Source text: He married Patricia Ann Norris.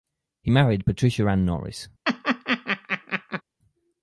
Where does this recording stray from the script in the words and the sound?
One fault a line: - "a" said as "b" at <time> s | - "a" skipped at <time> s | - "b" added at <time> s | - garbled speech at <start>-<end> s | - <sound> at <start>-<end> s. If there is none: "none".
- laugh at 2.0-3.4 s